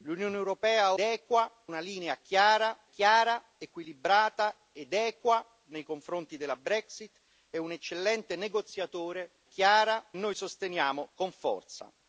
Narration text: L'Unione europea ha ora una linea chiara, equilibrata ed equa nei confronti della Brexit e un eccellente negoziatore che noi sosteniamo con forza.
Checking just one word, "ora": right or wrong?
wrong